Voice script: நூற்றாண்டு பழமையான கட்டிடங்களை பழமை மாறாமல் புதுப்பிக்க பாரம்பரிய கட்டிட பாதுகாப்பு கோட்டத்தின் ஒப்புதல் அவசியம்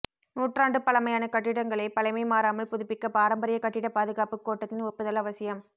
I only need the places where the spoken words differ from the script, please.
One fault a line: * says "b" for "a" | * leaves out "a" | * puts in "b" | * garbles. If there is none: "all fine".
all fine